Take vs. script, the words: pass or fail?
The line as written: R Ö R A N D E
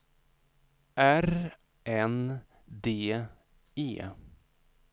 fail